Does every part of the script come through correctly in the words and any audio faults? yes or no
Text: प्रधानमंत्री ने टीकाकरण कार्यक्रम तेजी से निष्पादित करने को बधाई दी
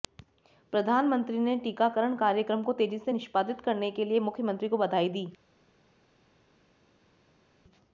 no